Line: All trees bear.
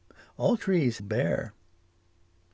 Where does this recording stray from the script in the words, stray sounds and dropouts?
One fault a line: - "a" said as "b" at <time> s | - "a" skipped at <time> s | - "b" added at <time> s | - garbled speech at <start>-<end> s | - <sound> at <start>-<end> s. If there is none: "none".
none